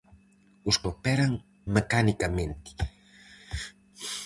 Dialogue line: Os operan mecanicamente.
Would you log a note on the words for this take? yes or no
no